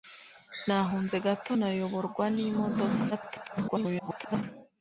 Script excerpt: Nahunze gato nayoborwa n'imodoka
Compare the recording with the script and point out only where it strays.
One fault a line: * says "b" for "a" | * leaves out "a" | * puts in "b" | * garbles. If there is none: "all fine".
* garbles